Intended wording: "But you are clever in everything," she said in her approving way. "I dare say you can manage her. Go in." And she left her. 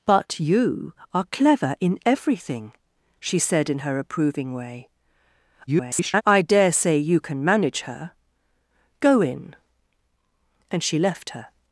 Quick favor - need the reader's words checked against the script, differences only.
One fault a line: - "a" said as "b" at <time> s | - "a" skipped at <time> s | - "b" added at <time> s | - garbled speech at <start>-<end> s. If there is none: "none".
- garbled speech at 5.7-6.2 s